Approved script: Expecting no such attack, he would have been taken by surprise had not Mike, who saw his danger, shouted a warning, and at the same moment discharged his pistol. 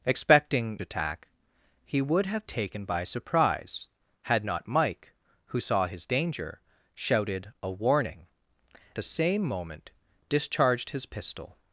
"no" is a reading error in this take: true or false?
true